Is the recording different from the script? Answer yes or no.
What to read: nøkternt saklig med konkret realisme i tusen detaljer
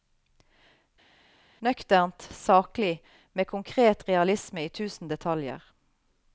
no